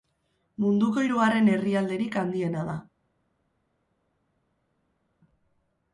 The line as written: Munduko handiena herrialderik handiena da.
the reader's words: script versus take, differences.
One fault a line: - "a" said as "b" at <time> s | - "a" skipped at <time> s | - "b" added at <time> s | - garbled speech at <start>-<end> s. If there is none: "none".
- "handiena" said as "hirugarren" at 1.1 s